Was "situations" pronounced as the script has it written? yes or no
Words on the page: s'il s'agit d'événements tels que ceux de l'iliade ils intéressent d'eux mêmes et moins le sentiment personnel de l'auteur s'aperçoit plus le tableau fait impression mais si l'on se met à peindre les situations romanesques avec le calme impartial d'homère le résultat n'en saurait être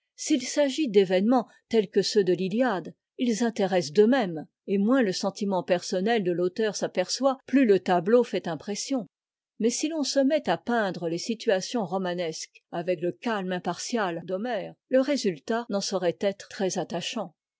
yes